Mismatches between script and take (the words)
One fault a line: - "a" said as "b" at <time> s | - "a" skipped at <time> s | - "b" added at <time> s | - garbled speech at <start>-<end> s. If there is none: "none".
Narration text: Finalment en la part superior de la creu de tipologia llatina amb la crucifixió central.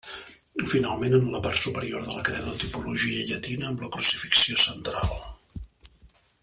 none